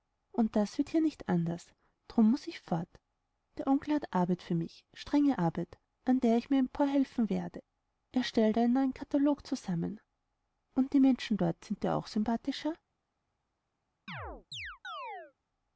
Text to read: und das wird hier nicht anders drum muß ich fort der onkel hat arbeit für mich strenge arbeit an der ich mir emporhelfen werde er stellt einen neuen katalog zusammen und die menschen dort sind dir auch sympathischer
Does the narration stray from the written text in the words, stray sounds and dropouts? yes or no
yes